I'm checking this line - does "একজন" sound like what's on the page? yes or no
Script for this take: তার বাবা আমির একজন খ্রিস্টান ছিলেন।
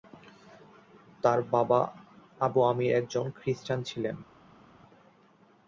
yes